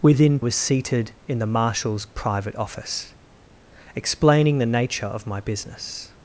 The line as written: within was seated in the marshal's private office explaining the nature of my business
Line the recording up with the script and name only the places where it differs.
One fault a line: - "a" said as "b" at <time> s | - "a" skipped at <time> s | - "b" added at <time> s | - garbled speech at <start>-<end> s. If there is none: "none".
none